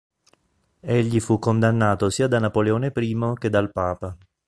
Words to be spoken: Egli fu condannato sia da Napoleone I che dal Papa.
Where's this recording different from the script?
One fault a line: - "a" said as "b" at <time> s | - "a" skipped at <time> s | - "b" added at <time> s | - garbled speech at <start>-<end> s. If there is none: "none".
none